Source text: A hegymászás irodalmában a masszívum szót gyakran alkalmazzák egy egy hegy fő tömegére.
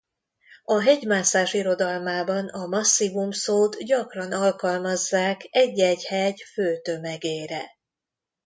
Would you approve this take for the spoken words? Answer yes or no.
yes